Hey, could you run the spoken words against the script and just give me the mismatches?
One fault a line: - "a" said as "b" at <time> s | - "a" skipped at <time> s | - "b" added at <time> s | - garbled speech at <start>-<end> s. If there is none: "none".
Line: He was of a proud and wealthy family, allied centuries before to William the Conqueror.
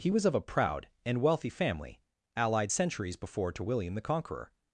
none